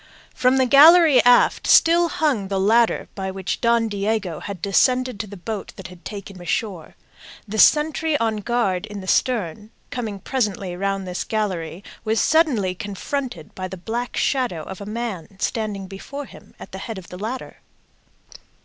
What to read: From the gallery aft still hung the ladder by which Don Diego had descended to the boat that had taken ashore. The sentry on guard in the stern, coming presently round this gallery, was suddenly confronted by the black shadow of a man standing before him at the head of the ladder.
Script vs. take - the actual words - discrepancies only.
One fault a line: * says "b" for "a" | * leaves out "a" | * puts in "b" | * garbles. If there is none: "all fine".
all fine